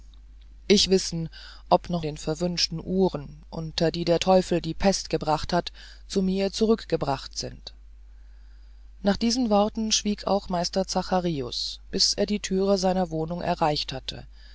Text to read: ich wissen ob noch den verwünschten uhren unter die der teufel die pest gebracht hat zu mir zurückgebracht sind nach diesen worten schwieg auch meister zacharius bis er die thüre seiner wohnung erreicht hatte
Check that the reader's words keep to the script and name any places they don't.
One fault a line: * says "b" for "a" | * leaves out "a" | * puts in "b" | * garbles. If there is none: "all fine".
all fine